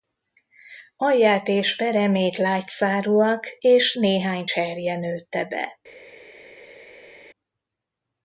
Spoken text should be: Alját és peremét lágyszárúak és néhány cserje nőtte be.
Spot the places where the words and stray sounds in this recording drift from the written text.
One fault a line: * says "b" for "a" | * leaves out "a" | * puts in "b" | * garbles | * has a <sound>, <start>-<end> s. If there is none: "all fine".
all fine